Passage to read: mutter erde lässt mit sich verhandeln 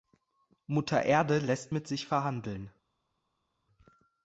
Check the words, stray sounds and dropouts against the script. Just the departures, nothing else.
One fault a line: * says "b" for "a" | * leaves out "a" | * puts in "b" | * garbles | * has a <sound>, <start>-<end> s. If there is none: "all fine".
all fine